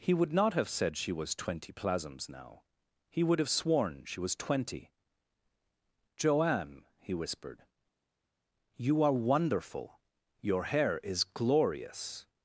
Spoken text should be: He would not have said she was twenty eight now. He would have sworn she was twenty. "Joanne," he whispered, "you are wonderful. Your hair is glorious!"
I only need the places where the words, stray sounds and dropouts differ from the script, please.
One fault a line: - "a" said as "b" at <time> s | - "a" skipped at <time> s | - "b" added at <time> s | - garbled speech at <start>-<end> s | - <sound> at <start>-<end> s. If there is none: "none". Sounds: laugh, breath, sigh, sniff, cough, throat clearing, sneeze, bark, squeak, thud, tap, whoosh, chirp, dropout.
- "eight" said as "plasms" at 1.7 s